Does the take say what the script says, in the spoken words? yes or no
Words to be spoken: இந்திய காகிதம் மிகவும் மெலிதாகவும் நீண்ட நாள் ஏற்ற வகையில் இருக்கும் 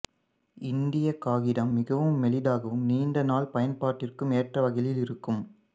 no